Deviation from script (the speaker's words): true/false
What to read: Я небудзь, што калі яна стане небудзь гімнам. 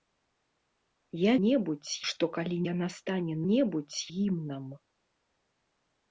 false